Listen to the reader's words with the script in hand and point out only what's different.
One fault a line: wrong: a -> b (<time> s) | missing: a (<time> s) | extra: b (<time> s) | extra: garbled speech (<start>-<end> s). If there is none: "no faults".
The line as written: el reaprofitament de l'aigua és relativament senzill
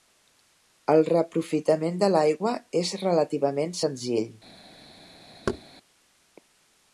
no faults